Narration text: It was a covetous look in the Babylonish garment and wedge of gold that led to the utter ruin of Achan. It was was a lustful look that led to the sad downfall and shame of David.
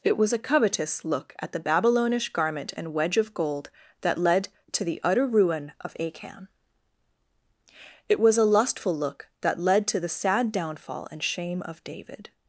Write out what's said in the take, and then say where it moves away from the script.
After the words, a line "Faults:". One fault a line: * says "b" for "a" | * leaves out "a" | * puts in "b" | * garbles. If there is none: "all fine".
It was a covetous look at the Babylonish garment and wedge of gold that led to the utter ruin of Achan. It was a lustful look that led to the sad downfall and shame of David.
Faults:
* says "at" for "in"
* leaves out "was"